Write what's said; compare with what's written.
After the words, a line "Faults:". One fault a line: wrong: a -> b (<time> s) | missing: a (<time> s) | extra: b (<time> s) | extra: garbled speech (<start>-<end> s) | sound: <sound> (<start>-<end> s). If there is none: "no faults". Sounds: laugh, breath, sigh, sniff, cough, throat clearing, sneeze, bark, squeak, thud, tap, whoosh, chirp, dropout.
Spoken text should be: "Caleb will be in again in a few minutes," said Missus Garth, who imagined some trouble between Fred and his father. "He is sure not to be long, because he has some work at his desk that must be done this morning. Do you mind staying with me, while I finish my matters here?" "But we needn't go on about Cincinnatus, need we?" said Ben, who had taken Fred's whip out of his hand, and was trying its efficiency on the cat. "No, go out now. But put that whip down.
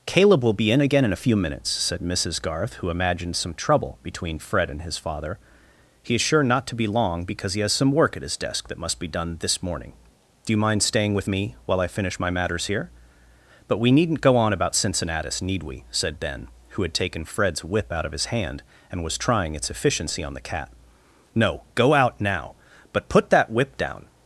"Caleb will be in again in a few minutes," said Missus Garth, who imagined some trouble between Fred and his father. "He is sure not to be long, because he has some work at his desk that must be done this morning. Do you mind staying with me, while I finish my matters here?" "But we needn't go on about Cincinnatus, need we?" said Ben, who had taken Fred's whip out of his hand, and was trying its efficiency on the cat. "No, go out now. But put that whip down.
Faults:
no faults